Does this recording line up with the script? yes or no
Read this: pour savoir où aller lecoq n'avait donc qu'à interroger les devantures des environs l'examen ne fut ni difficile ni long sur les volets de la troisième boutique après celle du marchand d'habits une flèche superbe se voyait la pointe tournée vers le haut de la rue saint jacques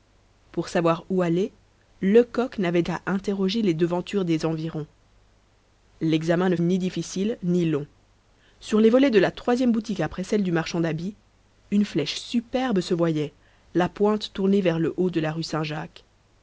no